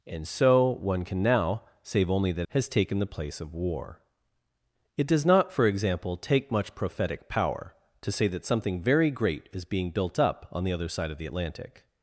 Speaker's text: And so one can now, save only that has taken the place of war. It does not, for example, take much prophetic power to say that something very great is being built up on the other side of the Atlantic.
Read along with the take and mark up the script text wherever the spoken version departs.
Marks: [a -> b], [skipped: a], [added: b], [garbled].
And so one can now, save only that has taken the place of war. It does not, for example, take much prophetic power to say that something very great is being built up on the other side of the Atlantic.